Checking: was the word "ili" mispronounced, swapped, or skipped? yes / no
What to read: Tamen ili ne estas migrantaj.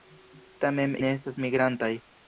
yes